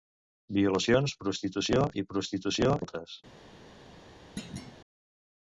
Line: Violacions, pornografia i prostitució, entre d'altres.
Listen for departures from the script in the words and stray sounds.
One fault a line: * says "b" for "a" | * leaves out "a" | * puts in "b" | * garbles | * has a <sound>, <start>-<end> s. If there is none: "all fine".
* says "prostitució" for "pornografia"
* leaves out "entre"
* has a thud, 4.4-4.7 s